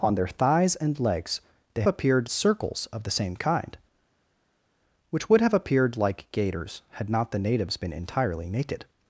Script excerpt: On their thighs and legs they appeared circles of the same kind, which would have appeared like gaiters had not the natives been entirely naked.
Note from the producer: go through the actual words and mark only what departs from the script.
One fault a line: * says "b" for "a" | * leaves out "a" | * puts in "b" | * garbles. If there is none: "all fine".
all fine